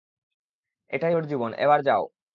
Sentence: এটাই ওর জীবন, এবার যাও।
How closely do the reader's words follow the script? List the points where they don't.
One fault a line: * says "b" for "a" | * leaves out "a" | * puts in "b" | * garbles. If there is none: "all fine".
all fine